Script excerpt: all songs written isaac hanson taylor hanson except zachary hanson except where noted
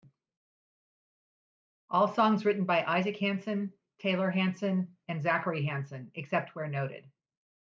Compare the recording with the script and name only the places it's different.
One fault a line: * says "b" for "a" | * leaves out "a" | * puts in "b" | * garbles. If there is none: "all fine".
* puts in "by"
* says "and" for "except"